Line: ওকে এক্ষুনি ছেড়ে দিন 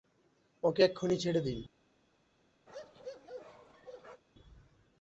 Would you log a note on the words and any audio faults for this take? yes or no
yes